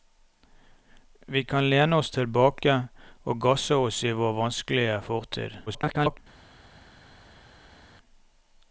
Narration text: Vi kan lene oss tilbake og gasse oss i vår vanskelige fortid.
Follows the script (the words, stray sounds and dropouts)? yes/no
no